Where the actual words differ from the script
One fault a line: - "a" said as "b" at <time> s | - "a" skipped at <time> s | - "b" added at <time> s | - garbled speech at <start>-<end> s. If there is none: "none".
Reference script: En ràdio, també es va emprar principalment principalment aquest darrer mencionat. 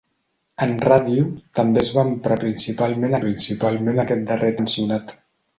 none